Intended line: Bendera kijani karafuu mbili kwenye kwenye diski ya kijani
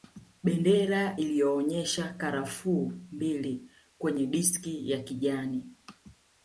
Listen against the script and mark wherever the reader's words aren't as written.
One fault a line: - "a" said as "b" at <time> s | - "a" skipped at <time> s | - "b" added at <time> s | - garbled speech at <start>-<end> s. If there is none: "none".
- "kijani" said as "iliyoonyesha" at 1.1 s
- "kwenye" skipped at 4.3 s